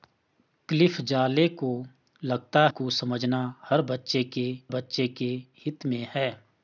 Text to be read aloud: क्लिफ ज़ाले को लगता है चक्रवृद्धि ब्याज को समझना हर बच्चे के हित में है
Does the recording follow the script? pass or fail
fail